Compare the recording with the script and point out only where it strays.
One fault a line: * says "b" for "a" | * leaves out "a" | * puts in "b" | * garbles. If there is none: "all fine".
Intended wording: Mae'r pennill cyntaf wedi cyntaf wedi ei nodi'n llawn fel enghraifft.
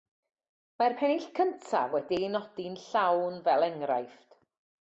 * leaves out "cyntaf wedi"